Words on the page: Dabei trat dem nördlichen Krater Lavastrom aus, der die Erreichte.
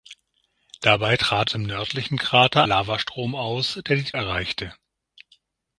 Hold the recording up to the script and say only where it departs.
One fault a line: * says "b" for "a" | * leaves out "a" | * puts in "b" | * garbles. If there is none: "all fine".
all fine